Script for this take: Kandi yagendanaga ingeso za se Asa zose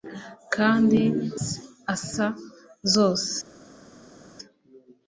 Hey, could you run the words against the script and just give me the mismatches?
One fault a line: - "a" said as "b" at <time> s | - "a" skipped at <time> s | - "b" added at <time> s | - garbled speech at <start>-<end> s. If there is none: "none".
- "yagendanaga ingeso za" skipped at 1.0 s